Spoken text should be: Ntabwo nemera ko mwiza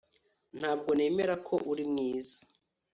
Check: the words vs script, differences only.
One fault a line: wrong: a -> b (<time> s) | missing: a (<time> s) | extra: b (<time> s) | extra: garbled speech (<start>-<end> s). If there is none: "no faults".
extra: uri (1.7 s)